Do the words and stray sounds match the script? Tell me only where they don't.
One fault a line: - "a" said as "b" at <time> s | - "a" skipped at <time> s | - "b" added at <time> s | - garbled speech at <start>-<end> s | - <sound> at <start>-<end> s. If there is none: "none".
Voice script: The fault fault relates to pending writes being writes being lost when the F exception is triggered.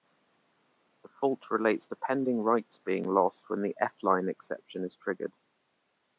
- "fault" skipped at 1.4 s
- "writes being" skipped at 3.0 s
- "line" added at 4.0 s